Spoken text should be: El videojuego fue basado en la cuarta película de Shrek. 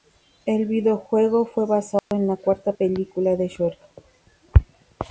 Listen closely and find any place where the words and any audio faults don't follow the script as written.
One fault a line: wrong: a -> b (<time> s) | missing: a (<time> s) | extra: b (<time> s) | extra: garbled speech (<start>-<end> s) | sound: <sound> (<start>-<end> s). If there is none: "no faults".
sound: dropout (2.0-2.1 s)